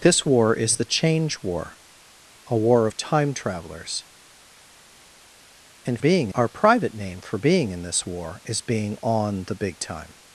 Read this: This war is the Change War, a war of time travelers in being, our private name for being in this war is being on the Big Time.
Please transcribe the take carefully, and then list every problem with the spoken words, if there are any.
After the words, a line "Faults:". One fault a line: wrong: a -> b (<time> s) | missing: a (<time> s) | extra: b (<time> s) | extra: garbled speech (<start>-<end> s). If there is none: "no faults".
This war is the Change War, a war of time travelers in being, our private name for being in this war is being on the Big Time.
Faults:
no faults